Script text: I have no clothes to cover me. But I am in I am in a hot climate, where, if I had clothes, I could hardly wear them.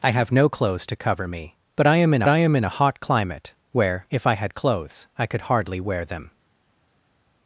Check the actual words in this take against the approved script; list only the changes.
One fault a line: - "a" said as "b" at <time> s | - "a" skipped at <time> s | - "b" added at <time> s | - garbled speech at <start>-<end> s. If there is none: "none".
none